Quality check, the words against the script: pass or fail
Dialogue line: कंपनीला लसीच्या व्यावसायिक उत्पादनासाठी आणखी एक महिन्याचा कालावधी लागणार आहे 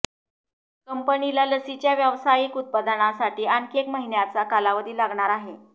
pass